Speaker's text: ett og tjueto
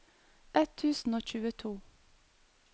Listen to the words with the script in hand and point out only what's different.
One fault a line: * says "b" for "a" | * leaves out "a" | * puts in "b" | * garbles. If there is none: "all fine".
* puts in "tusen"